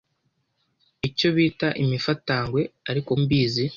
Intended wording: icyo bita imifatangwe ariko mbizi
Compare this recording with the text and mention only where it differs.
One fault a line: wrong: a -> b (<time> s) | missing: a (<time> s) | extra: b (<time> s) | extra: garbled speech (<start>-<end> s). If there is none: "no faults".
no faults